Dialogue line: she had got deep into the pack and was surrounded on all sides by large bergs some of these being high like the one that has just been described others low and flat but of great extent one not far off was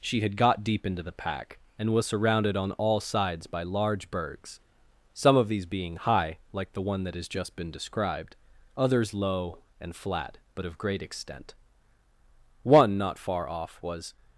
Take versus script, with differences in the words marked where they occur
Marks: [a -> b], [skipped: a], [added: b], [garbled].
she had got deep into the pack and was surrounded on all sides by large bergs some of these being high like the one that has just been described others low and flat but of great extent one not far off was